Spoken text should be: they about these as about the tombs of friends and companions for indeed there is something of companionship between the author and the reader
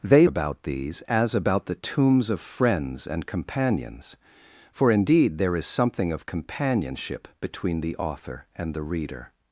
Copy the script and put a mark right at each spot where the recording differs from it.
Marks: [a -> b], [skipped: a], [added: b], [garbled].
they about these as about the tombs of friends and companions for indeed there is something of companionship between the author and the reader